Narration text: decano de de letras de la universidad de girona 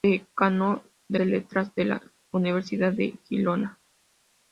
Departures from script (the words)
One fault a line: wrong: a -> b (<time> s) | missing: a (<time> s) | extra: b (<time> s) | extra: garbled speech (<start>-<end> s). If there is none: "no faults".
no faults